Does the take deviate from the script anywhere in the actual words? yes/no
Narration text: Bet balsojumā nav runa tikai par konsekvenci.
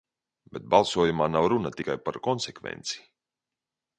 no